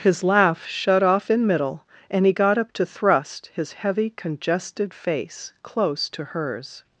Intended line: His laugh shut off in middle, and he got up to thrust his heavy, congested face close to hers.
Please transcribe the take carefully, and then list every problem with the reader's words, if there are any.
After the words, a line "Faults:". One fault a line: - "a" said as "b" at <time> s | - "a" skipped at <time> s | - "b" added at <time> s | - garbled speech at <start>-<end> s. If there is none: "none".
His laugh shut off in middle, and he got up to thrust his heavy, congested face close to hers.
Faults:
none